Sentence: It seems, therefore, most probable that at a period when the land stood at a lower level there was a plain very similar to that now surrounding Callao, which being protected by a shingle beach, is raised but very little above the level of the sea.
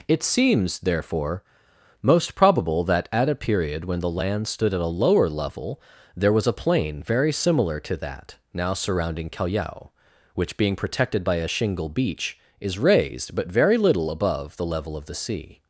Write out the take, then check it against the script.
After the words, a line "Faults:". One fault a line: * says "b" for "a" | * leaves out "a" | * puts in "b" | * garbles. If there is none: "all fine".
It seems, therefore, most probable that at a period when the land stood at a lower level there was a plain very similar to that now surrounding Callao, which being protected by a shingle beach, is raised but very little above the level of the sea.
Faults:
all fine